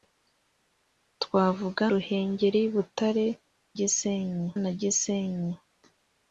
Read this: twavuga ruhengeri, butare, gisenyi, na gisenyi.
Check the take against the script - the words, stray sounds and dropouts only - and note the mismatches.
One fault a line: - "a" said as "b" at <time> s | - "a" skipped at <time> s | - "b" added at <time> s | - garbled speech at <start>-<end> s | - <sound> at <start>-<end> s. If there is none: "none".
none